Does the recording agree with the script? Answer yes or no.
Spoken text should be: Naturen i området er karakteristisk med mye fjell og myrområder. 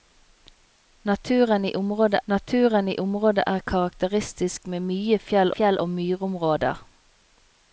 no